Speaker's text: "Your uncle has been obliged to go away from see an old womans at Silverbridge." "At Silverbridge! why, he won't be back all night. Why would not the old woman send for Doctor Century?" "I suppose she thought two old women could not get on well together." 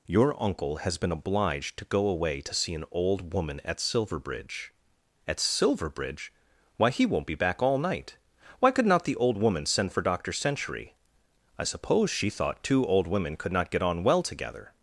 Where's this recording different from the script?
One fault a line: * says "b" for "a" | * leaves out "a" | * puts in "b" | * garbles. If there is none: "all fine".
* says "to" for "from"
* says "woman" for "womans"
* says "could" for "would"